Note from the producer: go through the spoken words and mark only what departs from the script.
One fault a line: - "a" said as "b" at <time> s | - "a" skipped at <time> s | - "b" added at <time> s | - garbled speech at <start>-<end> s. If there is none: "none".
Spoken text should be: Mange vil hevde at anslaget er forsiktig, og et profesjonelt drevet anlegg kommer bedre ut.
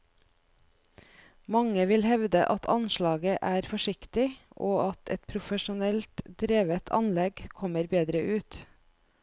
- "at" added at 4.9 s